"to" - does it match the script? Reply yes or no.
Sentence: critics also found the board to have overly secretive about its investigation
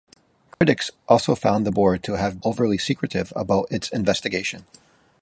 yes